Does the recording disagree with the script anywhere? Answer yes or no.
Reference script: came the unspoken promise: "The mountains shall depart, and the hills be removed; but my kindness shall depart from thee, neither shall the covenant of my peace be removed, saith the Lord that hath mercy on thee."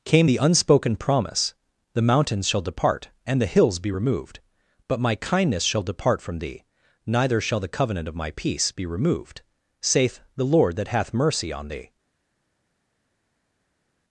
no